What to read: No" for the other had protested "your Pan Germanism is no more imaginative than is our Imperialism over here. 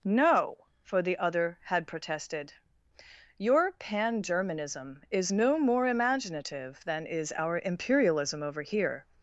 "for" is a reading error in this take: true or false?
false